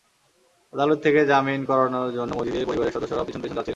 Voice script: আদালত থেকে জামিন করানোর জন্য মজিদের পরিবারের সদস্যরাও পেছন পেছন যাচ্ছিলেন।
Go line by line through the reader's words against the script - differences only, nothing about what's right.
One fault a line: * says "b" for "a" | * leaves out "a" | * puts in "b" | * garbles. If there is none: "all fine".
all fine